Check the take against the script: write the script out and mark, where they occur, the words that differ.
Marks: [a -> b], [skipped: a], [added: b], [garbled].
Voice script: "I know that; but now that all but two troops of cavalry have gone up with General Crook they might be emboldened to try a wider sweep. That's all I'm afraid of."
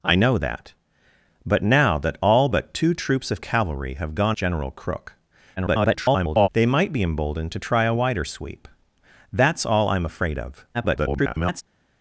"I know that; but now that all but two troops of cavalry have gone [skipped: up with] General Crook [garbled] they might be emboldened to try a wider sweep. That's all I'm afraid of." [garbled]